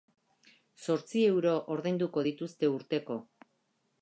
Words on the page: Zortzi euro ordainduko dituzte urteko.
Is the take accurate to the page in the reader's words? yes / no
yes